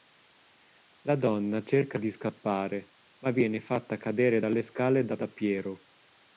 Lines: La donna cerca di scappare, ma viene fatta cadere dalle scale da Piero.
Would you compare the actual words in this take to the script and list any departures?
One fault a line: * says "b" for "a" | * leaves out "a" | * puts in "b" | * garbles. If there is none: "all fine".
* puts in "da"